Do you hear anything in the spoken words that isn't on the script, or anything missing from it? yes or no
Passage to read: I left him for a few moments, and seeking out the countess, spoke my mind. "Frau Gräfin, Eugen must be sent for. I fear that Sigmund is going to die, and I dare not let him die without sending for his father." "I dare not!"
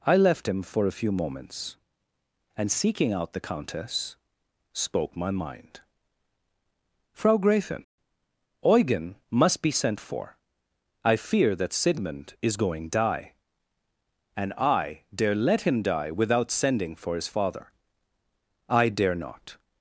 yes